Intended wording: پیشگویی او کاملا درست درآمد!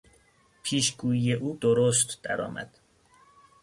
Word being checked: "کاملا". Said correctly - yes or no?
no